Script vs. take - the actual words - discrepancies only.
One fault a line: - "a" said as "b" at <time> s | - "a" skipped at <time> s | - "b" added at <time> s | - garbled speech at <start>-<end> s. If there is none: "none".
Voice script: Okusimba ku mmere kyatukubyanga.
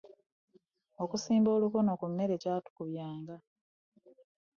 - "olukono" added at 1.6 s